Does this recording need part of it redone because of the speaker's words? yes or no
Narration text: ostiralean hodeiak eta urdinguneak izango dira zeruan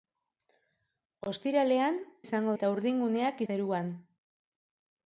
yes